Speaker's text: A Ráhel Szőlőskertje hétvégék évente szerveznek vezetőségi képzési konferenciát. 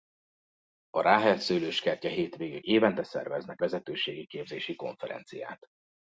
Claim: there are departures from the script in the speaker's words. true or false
false